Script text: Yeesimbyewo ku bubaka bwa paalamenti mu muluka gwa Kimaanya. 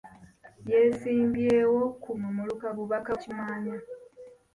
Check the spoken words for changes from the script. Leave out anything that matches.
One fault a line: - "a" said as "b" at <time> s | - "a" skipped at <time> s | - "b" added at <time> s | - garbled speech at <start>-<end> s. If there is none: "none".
- "bubaka bwa paalamenti" skipped at 2.1 s
- "gwa" said as "bubaka" at 2.8 s